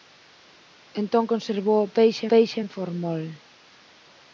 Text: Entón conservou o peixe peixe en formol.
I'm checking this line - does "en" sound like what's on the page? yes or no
yes